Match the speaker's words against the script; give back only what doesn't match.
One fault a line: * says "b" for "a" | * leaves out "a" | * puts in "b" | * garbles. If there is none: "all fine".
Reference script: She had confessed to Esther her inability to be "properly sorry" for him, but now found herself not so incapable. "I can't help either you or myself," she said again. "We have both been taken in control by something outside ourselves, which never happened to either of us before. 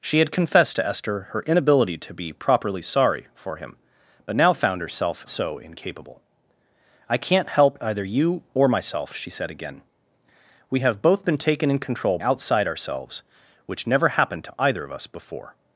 * leaves out "not"
* leaves out "by something"